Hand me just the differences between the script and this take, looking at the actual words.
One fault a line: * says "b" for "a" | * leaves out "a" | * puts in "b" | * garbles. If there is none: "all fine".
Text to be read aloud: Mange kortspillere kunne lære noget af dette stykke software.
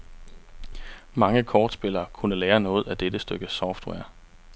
all fine